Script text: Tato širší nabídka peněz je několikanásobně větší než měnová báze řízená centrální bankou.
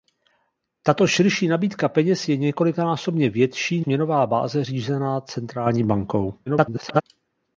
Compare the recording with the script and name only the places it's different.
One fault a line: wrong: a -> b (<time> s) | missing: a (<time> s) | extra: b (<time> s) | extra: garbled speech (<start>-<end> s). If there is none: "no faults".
missing: než (3.8 s)
extra: garbled speech (6.5-7.0 s)